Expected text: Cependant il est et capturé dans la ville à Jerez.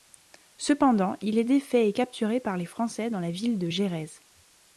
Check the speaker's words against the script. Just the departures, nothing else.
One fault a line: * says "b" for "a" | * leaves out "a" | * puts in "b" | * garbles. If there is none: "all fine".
* puts in "défait"
* puts in "par les Français"
* says "de" for "à"